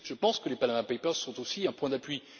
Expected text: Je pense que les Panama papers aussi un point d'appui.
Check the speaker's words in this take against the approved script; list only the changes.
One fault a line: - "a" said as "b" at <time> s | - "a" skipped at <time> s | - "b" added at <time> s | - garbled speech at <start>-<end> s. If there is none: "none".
- "sont" added at 1.1 s